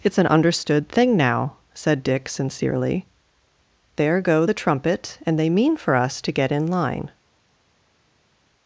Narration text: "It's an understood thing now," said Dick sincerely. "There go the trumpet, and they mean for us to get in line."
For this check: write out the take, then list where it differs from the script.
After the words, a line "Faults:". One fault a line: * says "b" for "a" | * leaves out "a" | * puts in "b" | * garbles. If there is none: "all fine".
"It's an understood thing now," said Dick sincerely. "There go the trumpet, and they mean for us to get in line."
Faults:
all fine